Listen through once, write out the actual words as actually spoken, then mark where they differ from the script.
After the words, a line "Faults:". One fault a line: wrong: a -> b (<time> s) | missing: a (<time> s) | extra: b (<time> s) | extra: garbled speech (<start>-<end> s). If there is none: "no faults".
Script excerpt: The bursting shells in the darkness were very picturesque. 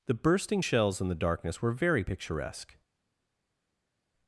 The bursting shells in the darkness were very picturesque.
Faults:
no faults